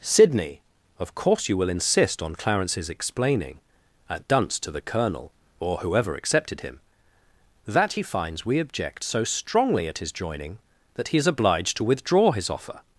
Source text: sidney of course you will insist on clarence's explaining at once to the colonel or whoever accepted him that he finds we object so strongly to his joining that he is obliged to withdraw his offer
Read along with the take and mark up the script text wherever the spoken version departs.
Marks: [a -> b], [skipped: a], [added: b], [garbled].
sidney of course you will insist on clarence's explaining at [once -> dunce] to the colonel or whoever accepted him that he finds we object so strongly [to -> at] his joining that he is obliged to withdraw his offer